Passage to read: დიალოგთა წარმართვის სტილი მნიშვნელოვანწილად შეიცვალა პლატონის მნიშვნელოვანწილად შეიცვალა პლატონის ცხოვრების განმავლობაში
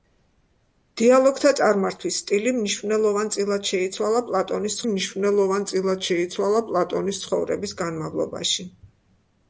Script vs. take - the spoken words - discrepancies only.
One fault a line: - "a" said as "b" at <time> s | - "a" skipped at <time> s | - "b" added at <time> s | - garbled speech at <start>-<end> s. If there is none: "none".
none